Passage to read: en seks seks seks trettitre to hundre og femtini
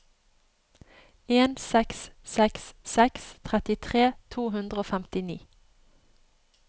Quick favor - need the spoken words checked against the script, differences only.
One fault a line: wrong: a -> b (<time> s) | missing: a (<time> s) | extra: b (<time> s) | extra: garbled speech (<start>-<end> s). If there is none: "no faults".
no faults